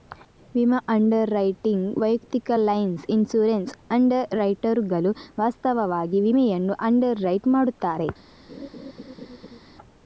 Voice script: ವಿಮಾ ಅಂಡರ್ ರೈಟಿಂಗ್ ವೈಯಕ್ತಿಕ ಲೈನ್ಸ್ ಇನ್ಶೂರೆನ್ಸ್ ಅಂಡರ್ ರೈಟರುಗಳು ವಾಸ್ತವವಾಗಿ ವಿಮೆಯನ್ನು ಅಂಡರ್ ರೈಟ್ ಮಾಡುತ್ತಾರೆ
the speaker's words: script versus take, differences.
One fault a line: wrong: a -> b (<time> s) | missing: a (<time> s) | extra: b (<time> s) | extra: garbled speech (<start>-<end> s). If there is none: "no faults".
no faults